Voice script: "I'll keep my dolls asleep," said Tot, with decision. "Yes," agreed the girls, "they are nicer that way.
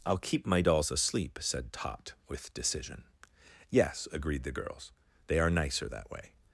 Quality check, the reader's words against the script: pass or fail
pass